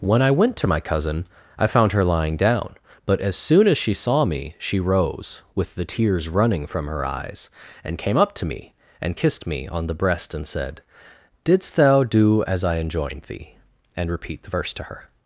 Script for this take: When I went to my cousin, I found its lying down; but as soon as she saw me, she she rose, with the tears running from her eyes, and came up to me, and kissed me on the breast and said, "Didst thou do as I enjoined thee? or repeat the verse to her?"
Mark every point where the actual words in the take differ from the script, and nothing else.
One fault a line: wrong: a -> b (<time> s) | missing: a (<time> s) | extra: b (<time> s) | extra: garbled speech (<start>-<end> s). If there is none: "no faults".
wrong: its -> her (1.9 s)
missing: she (4.8 s)
wrong: or -> and (14.0 s)